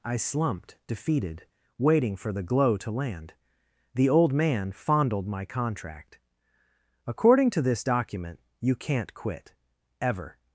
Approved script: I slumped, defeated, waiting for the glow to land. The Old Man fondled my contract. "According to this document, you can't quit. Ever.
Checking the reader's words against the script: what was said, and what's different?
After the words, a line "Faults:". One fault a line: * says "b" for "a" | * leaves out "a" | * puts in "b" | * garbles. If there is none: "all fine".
I slumped, defeated, waiting for the glow to land. The Old Man fondled my contract. "According to this document, you can't quit. Ever.
Faults:
all fine